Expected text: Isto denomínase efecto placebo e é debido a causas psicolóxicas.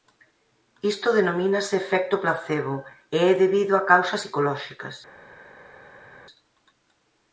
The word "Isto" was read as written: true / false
true